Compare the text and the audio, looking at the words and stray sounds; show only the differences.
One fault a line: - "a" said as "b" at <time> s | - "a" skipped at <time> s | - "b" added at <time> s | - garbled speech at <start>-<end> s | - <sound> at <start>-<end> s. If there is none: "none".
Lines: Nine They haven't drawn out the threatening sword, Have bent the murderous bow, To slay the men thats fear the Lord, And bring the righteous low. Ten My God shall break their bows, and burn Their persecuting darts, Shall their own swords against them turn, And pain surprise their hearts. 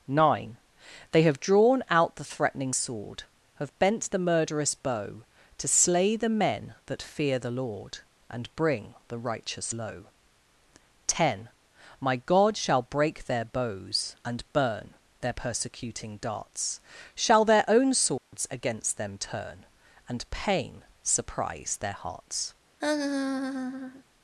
- "haven't" said as "have" at 1.2 s
- "thats" said as "that" at 6.9 s
- dropout at 18.2-18.3 s
- laugh at 22.8-24.0 s